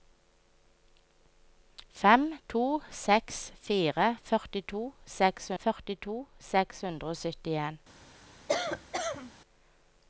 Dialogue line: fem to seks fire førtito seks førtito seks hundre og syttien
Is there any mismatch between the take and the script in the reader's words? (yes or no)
no